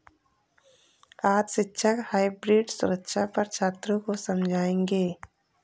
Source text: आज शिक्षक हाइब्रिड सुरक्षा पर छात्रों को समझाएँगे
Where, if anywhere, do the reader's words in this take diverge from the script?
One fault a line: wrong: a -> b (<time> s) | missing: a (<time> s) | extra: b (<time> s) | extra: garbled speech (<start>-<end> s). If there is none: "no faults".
no faults